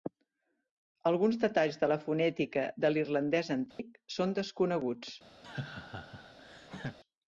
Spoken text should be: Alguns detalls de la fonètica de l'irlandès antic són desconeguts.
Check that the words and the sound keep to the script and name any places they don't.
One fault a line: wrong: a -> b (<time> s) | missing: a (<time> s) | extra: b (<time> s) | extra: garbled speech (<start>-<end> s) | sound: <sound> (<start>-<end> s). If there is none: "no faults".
sound: dropout (3.7-3.8 s)
sound: laugh (5.4-7.0 s)